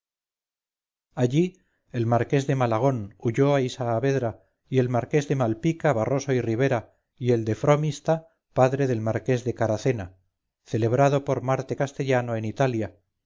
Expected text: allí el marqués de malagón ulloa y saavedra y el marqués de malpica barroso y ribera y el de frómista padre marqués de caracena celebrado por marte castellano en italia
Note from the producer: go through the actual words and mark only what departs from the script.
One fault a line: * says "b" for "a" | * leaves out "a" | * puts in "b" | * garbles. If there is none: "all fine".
* puts in "del"